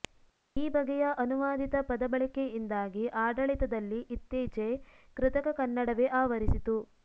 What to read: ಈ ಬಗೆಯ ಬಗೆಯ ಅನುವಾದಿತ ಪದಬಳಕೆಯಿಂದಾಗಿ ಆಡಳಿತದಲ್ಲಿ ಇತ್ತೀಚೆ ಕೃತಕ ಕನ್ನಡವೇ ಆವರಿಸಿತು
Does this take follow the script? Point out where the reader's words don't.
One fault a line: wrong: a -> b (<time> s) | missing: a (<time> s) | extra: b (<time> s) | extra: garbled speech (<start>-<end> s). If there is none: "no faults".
missing: ಬಗೆಯ (1.0 s)